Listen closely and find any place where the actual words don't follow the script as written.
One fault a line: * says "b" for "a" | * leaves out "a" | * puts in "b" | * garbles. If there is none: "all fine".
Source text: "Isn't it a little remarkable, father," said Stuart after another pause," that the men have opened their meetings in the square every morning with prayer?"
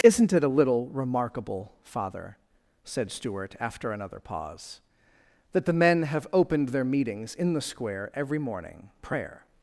* leaves out "with"